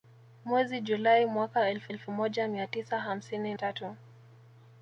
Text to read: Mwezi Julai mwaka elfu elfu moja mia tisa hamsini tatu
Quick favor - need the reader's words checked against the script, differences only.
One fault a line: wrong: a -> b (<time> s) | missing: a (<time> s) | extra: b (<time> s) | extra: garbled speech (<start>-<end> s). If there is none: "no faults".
no faults